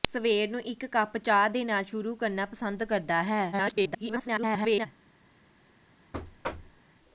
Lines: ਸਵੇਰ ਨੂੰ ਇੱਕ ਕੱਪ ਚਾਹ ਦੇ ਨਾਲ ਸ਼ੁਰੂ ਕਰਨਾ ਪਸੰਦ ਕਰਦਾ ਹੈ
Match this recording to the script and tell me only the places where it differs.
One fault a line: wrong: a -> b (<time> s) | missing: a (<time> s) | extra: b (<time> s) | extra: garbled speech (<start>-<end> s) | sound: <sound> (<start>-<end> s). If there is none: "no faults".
extra: garbled speech (3.5-4.9 s)
sound: thud (6.1-6.8 s)